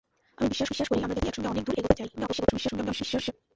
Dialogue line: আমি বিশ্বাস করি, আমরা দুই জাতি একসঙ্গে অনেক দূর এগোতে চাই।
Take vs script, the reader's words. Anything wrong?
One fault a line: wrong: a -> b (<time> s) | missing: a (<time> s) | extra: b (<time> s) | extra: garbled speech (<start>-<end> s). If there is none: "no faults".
extra: বিশ্বাস (0.7 s)
missing: দুই (1.2 s)
extra: garbled speech (2.2-3.3 s)